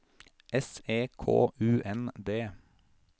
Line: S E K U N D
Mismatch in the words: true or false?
false